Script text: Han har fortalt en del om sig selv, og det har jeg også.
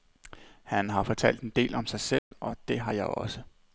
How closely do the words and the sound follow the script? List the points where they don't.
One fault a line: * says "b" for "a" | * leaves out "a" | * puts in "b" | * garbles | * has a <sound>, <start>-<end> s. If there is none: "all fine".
* has a dropout, 2.2-2.3 s